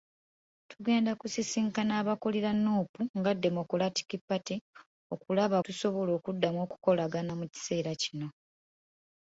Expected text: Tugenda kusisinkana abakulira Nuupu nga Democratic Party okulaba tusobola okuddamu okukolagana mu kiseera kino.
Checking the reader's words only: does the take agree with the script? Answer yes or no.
yes